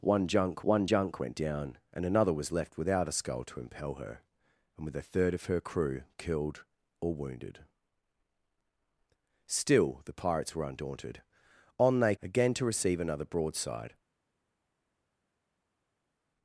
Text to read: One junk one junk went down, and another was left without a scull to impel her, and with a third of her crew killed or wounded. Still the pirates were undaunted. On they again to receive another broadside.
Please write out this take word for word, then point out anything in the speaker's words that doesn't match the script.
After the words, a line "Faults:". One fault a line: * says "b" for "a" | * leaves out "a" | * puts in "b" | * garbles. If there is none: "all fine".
One junk one junk went down, and another was left without a scull to impel her, and with a third of her crew killed or wounded. Still the pirates were undaunted. On they again to receive another broadside.
Faults:
all fine